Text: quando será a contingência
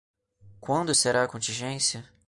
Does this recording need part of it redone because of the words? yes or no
no